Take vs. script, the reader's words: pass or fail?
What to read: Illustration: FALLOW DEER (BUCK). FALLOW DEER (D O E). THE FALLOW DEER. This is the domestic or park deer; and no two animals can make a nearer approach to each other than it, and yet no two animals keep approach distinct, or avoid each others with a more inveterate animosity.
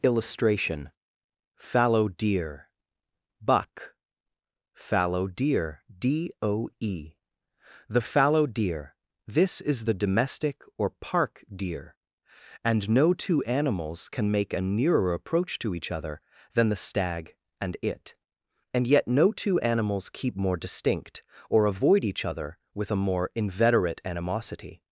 fail